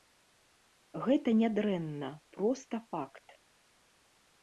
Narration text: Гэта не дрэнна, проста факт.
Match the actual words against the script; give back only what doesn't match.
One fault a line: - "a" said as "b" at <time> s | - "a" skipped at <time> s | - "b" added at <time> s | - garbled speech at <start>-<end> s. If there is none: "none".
none